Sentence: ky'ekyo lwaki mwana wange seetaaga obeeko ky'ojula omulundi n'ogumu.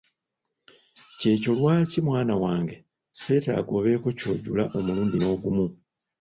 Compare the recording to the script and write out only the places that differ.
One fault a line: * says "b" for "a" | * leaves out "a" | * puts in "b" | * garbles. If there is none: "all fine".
all fine